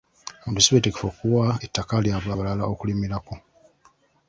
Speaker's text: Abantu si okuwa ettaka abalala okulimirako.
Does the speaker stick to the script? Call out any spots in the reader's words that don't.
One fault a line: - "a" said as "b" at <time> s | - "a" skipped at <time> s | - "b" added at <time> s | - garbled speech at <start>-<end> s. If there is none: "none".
- "beetegefu" added at 0.7 s
- "lyabwe" added at 2.0 s